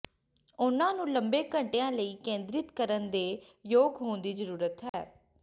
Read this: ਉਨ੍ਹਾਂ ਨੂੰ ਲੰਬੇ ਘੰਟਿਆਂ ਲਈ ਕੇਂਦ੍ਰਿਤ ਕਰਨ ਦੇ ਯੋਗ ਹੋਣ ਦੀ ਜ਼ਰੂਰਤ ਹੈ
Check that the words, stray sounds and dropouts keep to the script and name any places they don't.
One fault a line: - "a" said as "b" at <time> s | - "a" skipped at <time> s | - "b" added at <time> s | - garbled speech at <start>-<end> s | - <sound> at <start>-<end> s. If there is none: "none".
- dropout at 4.9-4.9 s